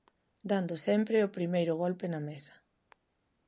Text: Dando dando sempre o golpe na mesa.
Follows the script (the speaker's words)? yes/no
no